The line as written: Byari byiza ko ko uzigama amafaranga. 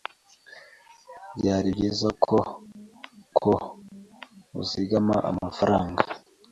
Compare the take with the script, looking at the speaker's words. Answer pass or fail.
pass